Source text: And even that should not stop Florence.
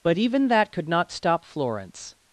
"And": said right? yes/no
no